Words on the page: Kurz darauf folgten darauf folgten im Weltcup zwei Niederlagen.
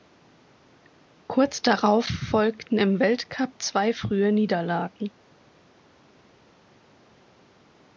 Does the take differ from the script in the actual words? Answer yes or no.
yes